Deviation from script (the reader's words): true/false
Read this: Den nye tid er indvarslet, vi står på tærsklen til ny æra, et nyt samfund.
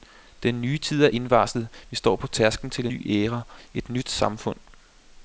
false